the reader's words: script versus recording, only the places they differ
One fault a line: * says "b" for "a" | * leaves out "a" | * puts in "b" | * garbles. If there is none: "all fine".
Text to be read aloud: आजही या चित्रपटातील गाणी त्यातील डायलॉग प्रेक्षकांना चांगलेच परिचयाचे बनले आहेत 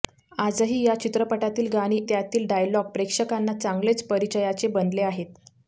all fine